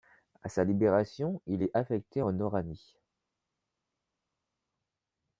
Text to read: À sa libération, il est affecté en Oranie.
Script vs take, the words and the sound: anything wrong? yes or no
no